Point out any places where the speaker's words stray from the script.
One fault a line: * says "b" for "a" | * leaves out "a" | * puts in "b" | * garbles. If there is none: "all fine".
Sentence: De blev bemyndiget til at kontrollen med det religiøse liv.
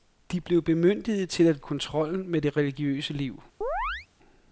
all fine